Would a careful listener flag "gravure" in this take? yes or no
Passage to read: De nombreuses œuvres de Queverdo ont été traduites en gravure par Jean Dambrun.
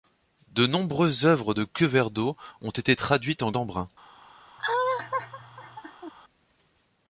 yes